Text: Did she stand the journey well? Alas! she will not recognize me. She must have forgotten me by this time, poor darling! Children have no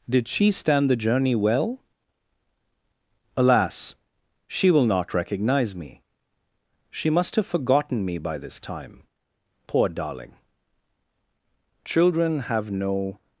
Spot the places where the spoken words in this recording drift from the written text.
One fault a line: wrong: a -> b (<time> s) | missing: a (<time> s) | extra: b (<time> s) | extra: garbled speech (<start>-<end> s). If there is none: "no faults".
no faults